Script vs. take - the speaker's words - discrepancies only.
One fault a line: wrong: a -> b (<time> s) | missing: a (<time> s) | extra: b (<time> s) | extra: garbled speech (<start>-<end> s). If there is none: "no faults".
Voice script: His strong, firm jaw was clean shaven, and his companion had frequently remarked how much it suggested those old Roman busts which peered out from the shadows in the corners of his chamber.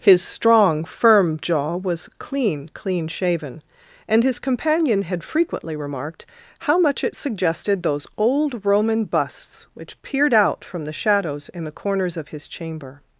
extra: clean (2.7 s)